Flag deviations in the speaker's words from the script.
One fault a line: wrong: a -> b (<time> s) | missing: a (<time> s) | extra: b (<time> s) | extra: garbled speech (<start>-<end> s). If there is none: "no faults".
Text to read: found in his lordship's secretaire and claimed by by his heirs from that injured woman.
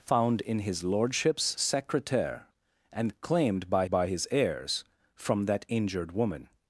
no faults